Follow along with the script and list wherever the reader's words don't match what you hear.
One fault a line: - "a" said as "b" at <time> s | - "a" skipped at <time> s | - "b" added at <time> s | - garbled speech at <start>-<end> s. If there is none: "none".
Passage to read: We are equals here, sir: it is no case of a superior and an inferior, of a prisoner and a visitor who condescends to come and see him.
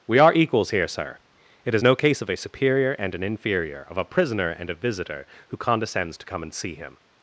none